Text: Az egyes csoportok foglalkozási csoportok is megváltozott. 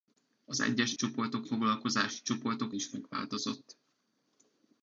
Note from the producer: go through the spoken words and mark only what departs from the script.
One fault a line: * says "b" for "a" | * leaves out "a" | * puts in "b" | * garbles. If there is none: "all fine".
all fine